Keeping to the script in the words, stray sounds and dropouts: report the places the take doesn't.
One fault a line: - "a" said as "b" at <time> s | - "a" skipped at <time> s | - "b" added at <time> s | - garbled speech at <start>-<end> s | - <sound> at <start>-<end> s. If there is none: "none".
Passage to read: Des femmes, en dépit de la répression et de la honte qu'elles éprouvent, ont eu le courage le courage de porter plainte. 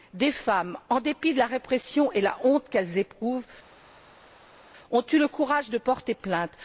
- "le courage" skipped at 5.7 s